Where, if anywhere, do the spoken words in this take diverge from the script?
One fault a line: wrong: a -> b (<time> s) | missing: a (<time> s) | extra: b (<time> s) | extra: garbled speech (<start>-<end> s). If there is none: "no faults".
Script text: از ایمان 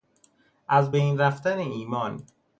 extra: بین رفتن (0.9 s)